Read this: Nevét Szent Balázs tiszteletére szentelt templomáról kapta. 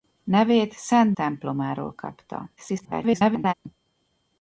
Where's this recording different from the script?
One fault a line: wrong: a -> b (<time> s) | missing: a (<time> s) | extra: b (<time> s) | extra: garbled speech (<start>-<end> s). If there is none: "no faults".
missing: Balázs tiszteletére szentelt (1.1 s)
extra: garbled speech (2.6-3.5 s)